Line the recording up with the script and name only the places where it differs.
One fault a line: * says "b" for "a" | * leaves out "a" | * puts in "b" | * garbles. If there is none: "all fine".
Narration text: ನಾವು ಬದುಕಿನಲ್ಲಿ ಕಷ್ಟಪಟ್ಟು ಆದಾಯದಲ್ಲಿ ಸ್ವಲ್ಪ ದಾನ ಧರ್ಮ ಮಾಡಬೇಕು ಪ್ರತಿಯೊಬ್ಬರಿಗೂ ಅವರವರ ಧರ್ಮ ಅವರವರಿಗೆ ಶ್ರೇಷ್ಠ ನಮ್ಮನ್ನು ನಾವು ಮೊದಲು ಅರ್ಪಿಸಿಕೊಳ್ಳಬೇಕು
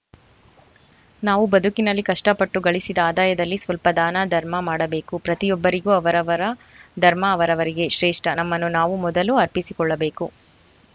* puts in "ಗಳಿಸಿದ"